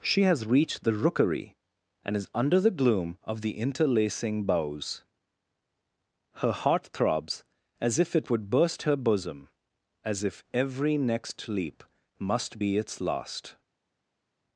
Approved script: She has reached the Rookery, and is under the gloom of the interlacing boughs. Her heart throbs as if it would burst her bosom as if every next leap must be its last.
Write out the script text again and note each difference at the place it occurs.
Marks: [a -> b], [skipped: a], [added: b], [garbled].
She has reached the Rookery, and is under the gloom of the interlacing boughs. Her heart throbs as if it would burst her bosom as if every next leap must be its last.